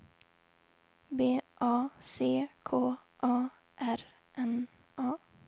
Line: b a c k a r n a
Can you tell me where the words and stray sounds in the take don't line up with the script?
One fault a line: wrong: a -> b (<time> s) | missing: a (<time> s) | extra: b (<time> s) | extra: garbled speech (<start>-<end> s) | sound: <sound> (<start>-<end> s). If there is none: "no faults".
no faults